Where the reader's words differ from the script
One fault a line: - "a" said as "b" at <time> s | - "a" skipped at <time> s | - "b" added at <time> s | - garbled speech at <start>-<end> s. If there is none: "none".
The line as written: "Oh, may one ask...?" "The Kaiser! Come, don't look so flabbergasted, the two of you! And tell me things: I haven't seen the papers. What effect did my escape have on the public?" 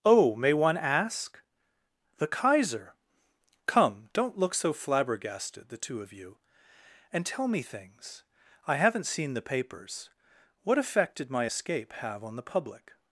none